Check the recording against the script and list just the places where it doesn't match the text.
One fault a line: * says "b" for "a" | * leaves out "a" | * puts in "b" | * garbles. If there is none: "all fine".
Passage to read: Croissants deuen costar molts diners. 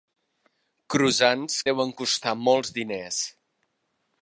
all fine